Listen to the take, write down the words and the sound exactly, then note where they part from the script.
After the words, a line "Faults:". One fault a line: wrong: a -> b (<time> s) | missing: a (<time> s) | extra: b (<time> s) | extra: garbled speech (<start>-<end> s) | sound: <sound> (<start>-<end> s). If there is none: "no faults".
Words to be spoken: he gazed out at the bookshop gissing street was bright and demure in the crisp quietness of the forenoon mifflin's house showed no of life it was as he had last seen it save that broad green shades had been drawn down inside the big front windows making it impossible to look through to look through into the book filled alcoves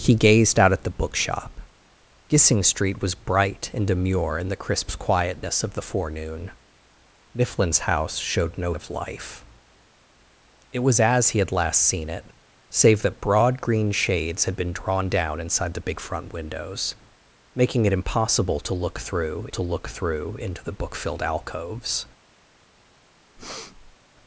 he gazed out at the bookshop gissing street was bright and demure in the crisp quietness of the forenoon mifflin's house showed no of life it was as he had last seen it save that broad green shades had been drawn down inside the big front windows making it impossible to look through to look through into the book filled alcoves
Faults:
sound: breath (23.4-24.0 s)